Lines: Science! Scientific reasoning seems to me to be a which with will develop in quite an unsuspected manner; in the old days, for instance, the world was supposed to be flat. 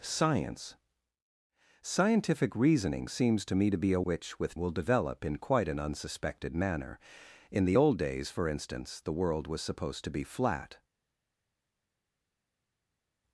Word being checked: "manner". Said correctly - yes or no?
yes